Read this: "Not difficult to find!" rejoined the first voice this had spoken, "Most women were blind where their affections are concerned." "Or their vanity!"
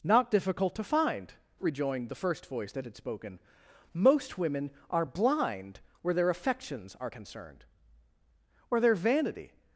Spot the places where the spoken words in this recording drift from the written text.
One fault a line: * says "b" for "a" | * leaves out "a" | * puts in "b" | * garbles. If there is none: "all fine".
* says "that" for "this"
* says "are" for "were"